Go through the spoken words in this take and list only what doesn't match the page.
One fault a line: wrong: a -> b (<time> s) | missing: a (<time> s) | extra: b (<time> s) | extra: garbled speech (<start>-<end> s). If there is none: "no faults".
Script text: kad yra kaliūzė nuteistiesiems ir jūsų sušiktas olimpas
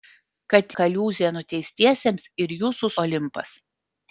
missing: yra (0.8 s)
missing: sušiktas (2.9 s)